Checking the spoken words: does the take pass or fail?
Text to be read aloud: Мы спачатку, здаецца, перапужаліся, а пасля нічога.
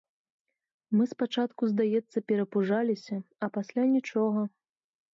pass